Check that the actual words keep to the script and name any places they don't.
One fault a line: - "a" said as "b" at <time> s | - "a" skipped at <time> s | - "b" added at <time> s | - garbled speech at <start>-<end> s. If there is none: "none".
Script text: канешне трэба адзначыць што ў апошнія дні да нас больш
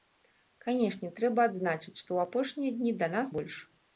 none